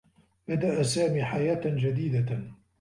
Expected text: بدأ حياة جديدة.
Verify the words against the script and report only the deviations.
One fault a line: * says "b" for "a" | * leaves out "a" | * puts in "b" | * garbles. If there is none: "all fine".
* puts in "سامي"